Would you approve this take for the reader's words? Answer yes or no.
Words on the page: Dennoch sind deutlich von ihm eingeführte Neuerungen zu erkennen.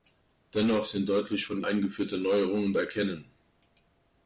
no